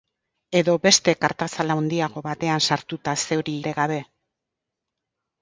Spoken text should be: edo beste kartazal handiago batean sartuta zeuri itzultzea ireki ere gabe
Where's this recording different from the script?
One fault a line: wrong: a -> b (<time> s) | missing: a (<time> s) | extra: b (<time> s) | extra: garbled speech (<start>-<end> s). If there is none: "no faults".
missing: itzultzea ireki (3.5 s)